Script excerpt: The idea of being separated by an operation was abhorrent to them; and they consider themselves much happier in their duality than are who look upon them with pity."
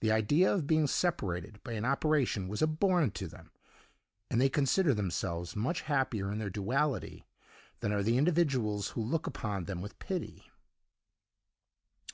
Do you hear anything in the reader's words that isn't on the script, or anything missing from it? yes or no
yes